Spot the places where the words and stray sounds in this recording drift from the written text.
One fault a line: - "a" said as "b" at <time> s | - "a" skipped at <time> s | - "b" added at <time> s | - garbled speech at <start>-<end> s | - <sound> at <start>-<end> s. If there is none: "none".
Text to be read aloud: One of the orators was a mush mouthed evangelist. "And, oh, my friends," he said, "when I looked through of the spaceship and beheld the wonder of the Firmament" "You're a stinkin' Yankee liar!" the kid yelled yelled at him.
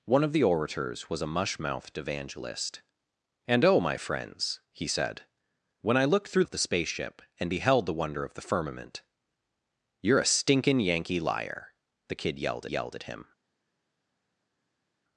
none